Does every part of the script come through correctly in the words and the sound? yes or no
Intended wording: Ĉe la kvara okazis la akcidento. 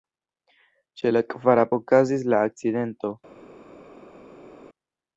yes